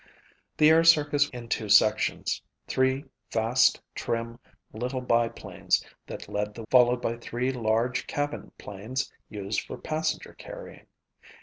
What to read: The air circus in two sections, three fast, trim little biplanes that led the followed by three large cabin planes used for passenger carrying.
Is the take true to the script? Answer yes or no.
yes